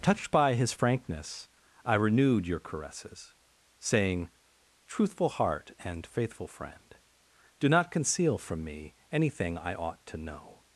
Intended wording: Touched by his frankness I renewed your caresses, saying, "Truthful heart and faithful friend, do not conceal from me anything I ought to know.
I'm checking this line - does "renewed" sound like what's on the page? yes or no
yes